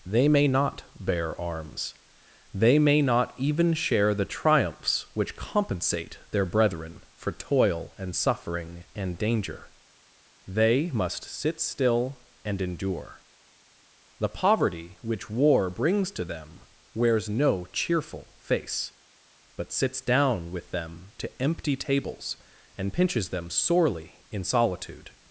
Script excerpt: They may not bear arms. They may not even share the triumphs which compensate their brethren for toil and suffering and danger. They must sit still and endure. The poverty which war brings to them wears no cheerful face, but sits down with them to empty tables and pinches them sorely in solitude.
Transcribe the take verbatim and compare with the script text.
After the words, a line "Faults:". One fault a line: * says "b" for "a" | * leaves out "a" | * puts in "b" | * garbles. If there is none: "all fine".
They may not bear arms. They may not even share the triumphs which compensate their brethren for toil and suffering and danger. They must sit still and endure. The poverty which war brings to them wears no cheerful face, but sits down with them to empty tables and pinches them sorely in solitude.
Faults:
all fine